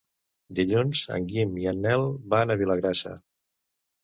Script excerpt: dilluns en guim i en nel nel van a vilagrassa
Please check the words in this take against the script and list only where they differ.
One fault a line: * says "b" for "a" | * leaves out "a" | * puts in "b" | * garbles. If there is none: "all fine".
* leaves out "nel"